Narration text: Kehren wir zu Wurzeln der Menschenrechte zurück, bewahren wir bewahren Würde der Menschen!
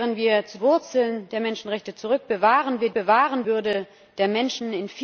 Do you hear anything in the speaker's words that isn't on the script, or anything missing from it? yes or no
no